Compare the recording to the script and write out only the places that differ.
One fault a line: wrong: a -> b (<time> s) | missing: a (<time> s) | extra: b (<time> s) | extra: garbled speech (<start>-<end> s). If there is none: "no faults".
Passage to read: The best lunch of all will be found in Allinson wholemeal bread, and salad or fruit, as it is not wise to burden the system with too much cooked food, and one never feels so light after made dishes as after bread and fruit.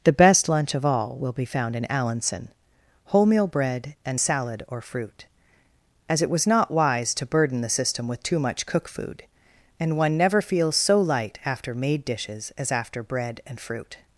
wrong: is -> was (6.3 s)
wrong: cooked -> cook (8.7 s)